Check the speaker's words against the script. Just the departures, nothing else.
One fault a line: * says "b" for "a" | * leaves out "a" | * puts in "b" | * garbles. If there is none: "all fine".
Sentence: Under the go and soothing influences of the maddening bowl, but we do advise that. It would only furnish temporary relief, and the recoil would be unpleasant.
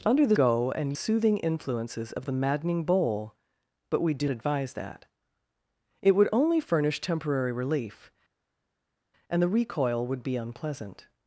all fine